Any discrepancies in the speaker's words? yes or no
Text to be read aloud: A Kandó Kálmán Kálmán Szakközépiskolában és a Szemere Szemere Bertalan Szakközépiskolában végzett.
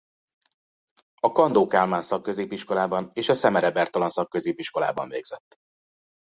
yes